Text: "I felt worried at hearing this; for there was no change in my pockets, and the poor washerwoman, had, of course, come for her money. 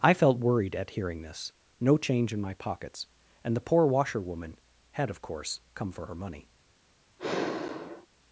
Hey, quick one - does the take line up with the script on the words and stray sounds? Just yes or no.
no